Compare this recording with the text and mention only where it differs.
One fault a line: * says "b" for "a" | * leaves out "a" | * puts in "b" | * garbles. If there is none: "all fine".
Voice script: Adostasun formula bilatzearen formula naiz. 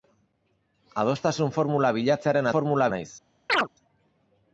all fine